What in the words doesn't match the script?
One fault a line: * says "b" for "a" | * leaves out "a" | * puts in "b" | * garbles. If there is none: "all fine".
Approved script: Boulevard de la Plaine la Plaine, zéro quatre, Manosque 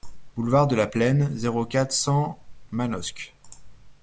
* leaves out "la Plaine"
* puts in "cent"